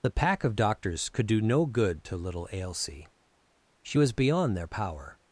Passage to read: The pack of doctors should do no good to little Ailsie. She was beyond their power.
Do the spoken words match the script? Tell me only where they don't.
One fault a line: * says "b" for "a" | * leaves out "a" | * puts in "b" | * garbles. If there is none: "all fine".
* says "could" for "should"